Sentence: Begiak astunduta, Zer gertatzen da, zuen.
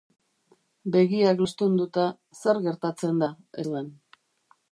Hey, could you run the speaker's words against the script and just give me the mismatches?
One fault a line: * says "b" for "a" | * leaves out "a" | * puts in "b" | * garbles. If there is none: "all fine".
all fine